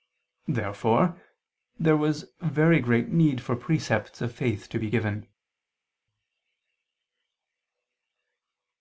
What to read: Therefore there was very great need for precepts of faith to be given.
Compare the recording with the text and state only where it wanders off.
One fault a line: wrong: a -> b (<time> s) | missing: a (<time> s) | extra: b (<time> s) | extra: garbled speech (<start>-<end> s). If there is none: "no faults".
no faults